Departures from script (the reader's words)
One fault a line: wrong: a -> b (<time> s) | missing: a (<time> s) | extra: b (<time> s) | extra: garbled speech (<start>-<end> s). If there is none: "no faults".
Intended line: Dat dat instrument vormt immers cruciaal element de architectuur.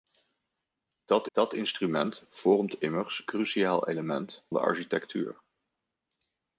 no faults